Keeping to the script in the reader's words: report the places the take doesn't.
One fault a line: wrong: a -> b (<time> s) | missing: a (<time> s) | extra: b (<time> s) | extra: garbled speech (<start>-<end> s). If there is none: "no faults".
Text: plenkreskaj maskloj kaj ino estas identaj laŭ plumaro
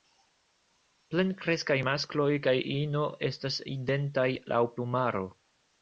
no faults